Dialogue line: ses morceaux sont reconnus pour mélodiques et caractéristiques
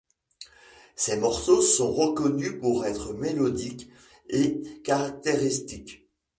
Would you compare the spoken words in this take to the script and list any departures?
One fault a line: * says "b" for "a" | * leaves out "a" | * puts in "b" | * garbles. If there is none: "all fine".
* puts in "être"